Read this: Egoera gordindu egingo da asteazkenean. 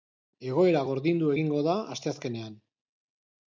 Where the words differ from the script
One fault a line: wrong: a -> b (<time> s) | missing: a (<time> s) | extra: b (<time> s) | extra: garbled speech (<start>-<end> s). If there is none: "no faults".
no faults